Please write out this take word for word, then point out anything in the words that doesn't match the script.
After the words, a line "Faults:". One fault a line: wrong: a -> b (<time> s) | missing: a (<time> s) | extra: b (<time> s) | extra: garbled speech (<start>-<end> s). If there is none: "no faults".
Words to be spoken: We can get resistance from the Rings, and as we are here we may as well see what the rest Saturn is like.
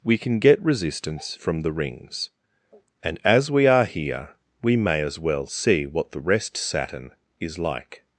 We can get resistance from the Rings, and as we are here we may as well see what the rest Saturn is like.
Faults:
no faults